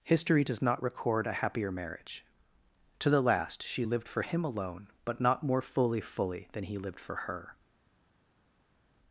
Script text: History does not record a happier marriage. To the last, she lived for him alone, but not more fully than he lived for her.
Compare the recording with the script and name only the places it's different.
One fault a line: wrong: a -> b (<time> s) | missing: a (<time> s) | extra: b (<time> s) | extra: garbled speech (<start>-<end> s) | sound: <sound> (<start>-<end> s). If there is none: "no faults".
extra: fully (6.0 s)